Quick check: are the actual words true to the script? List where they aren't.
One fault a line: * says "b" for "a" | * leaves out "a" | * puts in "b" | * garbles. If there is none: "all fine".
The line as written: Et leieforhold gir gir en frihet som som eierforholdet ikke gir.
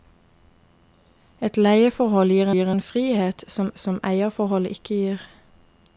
all fine